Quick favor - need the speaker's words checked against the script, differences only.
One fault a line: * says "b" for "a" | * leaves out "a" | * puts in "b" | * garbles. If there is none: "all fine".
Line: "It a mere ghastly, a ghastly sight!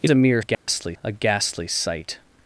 all fine